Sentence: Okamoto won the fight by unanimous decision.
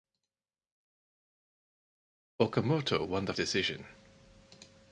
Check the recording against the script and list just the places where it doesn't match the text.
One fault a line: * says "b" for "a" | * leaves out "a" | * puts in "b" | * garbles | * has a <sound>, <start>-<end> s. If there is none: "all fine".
* leaves out "fight by unanimous"